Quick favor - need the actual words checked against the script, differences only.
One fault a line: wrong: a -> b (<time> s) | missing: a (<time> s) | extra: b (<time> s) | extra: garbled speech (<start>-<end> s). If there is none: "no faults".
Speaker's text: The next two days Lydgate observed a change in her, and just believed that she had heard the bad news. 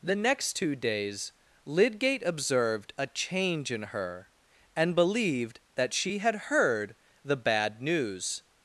missing: just (4.9 s)